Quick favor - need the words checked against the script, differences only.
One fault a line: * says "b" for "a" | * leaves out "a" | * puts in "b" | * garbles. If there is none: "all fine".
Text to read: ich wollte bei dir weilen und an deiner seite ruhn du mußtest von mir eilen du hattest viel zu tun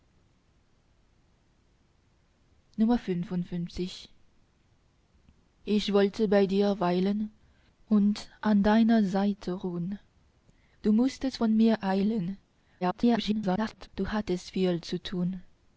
* garbles